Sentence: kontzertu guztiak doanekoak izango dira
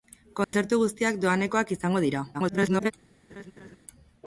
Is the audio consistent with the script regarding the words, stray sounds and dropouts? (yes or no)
no